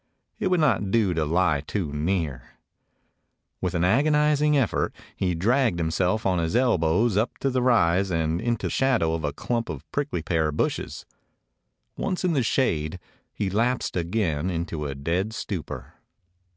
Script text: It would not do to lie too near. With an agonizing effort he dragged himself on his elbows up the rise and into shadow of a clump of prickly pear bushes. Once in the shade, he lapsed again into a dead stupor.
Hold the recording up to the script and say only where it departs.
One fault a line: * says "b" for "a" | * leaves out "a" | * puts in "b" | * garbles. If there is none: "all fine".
all fine